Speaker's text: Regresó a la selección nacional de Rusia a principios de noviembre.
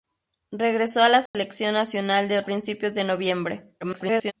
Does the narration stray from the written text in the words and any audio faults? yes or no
yes